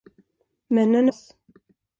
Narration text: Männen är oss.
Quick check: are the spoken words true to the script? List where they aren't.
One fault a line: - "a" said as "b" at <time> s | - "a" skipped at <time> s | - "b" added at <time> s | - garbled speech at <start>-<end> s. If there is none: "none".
none